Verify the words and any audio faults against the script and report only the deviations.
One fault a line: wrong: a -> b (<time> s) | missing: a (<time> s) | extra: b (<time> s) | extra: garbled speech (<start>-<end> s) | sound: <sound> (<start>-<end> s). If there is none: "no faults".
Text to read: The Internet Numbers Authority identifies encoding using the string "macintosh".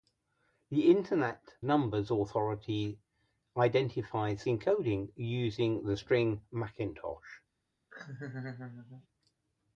sound: laugh (7.9-9.1 s)